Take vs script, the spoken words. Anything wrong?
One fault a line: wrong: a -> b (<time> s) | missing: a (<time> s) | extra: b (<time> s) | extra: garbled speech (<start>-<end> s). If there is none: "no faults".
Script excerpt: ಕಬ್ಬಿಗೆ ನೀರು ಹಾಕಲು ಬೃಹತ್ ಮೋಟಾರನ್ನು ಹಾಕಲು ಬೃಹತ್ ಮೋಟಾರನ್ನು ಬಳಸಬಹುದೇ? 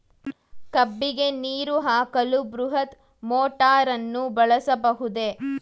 missing: ಹಾಕಲು ಬೃಹತ್ ಮೋಟಾರನ್ನು (4.2 s)